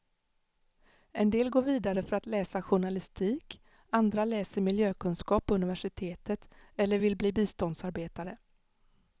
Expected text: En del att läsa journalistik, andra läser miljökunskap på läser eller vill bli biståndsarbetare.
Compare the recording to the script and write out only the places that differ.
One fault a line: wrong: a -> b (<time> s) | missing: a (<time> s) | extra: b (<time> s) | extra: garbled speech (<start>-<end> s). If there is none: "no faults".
extra: går vidare för (1.5 s)
wrong: läser -> universitetet (5.5 s)